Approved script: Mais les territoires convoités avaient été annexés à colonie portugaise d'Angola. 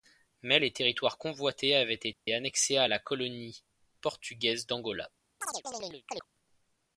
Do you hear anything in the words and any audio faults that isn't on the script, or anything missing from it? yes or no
yes